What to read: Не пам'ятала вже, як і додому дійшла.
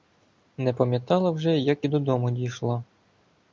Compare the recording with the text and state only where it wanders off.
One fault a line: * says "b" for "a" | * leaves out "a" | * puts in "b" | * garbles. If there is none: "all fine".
all fine